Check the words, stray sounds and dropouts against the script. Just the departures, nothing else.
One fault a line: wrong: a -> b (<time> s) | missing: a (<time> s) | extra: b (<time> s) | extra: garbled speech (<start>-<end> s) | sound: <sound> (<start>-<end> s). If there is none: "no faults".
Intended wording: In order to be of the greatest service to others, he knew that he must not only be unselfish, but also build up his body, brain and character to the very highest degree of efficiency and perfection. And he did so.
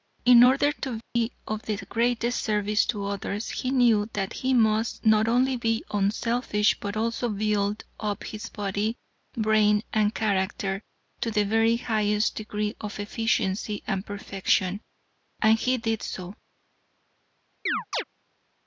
sound: dropout (1.0-1.2 s)
sound: chirp (17.7-18.0 s)